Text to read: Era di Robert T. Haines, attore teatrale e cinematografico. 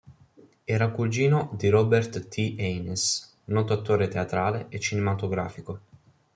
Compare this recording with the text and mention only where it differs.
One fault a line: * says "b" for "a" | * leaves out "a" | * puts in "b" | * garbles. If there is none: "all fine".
* puts in "cugino"
* puts in "noto"